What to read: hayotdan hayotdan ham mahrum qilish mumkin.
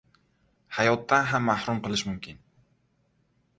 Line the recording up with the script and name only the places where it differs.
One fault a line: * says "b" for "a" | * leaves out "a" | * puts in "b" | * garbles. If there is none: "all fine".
* leaves out "hayotdan"